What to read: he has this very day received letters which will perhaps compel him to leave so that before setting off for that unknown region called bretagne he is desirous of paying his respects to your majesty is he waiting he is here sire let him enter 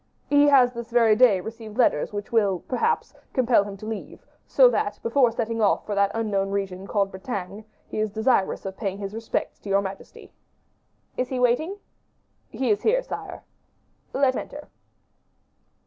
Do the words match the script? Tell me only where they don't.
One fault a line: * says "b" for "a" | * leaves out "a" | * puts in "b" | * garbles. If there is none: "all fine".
* leaves out "him"